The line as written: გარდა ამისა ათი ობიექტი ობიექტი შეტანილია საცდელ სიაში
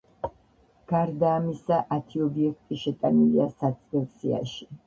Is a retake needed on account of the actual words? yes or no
yes